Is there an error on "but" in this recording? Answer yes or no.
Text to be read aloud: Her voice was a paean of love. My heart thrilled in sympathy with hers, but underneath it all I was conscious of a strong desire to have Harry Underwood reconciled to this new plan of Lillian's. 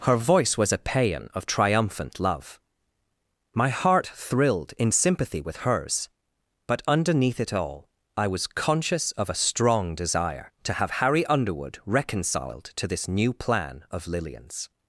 no